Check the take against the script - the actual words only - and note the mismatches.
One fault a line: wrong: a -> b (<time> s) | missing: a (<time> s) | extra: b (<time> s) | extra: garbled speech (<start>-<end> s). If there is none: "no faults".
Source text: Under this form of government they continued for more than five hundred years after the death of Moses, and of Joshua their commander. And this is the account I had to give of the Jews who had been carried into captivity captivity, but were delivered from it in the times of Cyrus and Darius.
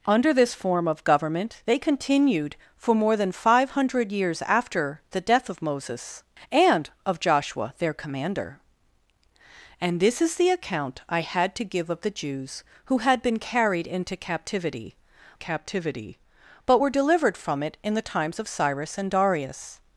no faults